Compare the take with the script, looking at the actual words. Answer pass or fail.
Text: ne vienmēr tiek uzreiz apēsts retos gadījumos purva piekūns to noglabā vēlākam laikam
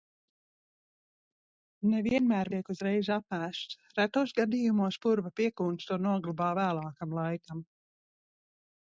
pass